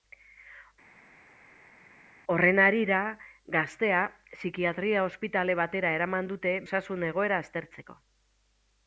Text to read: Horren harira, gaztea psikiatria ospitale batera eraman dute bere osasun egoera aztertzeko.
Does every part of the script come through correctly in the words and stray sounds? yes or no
no